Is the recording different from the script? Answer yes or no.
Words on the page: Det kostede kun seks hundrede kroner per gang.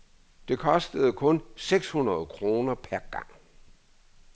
no